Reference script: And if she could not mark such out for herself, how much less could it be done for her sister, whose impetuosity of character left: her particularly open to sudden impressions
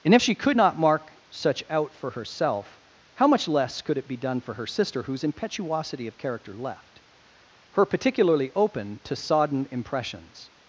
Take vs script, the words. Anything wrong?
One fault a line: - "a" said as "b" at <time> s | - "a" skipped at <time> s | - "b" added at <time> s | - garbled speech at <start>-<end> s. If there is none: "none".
- "sudden" said as "sodden" at 9.1 s